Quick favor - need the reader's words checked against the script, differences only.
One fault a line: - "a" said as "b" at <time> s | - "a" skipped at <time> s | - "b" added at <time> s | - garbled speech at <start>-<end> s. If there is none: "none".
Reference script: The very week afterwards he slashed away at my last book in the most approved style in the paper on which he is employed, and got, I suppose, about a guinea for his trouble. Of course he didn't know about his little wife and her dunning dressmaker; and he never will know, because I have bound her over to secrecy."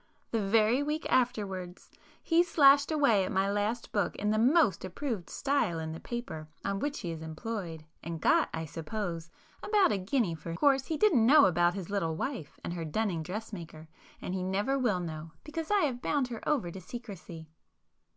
- "his trouble Of" skipped at 10.5 s